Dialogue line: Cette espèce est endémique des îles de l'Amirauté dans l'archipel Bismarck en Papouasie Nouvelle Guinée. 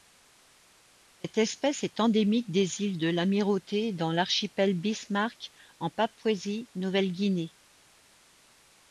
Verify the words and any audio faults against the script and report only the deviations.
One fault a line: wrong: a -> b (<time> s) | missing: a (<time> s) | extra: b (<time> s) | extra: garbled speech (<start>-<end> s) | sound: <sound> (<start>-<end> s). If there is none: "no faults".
no faults